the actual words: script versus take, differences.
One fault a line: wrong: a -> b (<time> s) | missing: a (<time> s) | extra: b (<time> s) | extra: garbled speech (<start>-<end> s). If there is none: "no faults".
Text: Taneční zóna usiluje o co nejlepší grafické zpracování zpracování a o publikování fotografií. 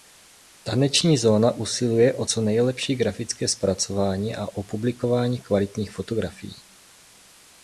missing: zpracování (4.3 s)
extra: kvalitních (5.4 s)